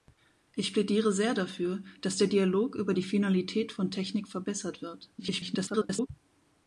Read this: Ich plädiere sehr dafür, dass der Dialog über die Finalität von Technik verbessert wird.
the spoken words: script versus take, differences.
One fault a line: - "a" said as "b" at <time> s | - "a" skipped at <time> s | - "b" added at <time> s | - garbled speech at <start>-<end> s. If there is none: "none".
- garbled speech at 5.2-6.1 s